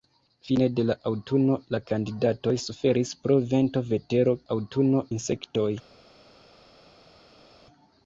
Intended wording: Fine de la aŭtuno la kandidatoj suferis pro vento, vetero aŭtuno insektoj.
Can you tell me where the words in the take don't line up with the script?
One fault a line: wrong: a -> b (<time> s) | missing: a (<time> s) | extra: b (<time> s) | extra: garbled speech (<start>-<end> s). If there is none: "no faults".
no faults